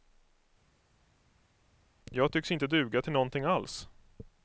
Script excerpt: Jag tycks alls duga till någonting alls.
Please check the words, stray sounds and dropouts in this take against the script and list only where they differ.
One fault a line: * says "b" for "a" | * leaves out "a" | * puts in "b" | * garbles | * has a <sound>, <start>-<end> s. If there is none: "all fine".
* says "inte" for "alls"